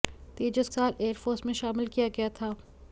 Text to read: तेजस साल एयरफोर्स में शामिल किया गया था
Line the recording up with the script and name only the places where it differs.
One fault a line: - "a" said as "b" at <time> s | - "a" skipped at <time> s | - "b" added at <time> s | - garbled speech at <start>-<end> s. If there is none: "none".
none